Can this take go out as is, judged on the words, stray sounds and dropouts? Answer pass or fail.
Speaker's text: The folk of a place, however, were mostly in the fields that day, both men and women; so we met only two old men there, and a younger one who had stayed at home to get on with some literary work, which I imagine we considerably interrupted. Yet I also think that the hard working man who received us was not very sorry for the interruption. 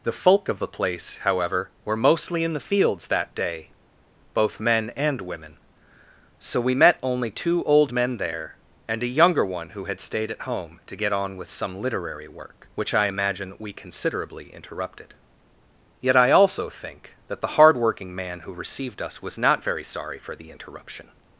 fail